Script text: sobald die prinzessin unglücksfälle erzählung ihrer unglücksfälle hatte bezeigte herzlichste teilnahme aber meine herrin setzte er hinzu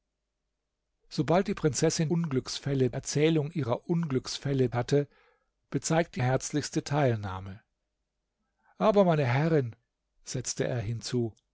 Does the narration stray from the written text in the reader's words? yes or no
no